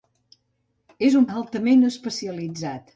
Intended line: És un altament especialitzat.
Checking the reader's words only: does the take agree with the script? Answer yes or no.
yes